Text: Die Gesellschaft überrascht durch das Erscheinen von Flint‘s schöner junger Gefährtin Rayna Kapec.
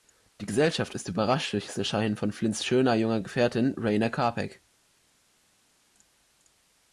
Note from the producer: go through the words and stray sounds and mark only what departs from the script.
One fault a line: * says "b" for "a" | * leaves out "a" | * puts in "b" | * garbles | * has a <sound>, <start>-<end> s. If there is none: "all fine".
* puts in "ist"